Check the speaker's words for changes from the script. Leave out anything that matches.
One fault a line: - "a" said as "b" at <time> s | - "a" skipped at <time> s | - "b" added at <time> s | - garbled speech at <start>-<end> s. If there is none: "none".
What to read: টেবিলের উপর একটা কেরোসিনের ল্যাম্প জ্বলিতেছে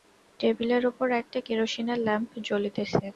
none